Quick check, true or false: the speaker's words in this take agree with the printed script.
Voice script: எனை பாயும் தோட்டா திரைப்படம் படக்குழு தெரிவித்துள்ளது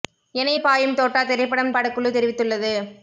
true